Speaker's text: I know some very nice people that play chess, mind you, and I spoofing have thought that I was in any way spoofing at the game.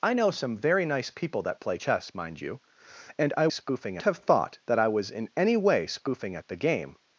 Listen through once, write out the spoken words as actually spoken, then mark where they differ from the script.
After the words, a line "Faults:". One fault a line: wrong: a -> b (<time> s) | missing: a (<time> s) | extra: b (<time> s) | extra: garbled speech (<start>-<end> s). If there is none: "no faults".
I know some very nice people that play chess, mind you, and I spoofing have thought that I was in any way spoofing at the game.
Faults:
no faults